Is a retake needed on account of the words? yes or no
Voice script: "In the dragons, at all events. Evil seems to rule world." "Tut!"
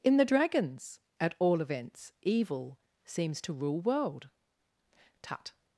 no